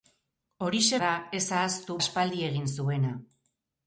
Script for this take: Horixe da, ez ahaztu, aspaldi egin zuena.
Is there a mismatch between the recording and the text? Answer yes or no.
no